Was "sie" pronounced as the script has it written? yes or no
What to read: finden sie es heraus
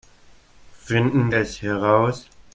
no